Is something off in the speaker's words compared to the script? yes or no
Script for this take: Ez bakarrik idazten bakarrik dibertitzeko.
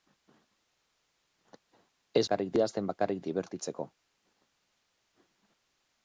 no